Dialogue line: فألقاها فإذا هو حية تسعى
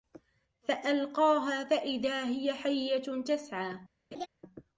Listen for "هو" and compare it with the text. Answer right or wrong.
wrong